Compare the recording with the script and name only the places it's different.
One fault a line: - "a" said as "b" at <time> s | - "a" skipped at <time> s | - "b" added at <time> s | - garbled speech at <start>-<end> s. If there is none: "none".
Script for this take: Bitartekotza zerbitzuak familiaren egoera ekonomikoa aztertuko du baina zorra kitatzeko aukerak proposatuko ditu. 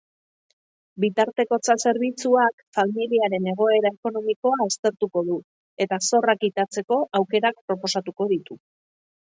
- "baina" said as "eta" at 5.9 s